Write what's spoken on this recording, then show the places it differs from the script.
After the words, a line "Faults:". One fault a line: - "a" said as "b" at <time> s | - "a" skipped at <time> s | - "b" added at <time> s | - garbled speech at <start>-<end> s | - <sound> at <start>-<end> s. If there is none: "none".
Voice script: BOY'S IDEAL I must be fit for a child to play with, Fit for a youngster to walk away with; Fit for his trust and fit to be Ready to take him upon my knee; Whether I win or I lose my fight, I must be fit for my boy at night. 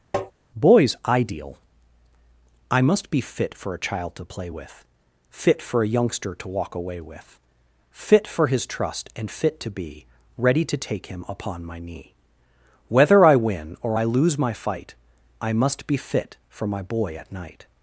BOY'S IDEAL I must be fit for a child to play with, Fit for a youngster to walk away with; Fit for his trust and fit to be Ready to take him upon my knee; Whether I win or I lose my fight, I must be fit for my boy at night.
Faults:
- tap at 0.1-0.3 s